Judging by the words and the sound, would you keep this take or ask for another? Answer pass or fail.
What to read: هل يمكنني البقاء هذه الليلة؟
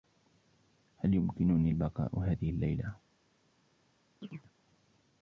fail